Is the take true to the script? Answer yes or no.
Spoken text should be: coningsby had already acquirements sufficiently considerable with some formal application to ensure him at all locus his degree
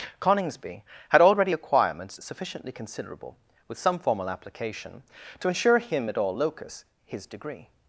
yes